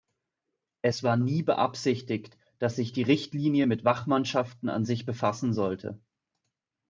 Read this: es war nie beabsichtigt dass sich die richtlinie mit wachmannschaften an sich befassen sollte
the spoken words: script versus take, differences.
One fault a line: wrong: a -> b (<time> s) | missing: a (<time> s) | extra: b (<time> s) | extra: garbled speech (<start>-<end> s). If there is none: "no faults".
no faults